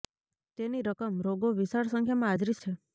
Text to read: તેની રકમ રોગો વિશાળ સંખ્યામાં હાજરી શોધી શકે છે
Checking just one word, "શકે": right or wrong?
wrong